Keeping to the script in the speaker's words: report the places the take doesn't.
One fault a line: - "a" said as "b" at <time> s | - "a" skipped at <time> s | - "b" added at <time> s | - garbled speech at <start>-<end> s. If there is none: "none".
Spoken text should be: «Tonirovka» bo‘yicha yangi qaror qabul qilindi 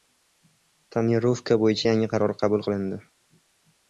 none